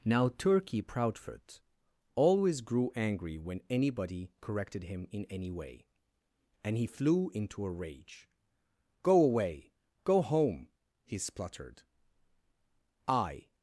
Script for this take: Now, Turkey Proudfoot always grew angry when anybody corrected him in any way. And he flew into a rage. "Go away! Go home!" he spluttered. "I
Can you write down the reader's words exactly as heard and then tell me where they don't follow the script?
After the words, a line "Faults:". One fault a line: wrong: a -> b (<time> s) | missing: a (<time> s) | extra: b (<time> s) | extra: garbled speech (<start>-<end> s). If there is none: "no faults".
Now, Turkey Proudfoot always grew angry when anybody corrected him in any way. And he flew into a rage. "Go away! Go home!" he spluttered. "I
Faults:
no faults